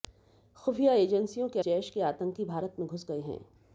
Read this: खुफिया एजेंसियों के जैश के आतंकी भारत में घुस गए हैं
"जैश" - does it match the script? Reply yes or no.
yes